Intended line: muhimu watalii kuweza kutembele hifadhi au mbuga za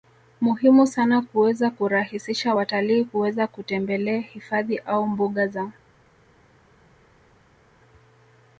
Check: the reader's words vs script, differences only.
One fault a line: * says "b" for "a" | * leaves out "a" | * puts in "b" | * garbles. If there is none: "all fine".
* puts in "sana kuweza kurahisisha"